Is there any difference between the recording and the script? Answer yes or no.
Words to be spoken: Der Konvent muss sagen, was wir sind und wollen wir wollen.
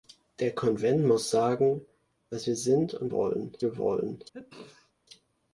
no